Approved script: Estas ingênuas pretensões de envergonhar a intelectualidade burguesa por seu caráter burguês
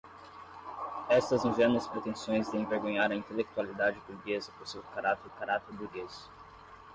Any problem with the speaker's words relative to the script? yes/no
yes